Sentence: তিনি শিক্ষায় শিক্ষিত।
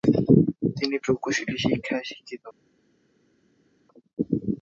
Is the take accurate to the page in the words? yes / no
no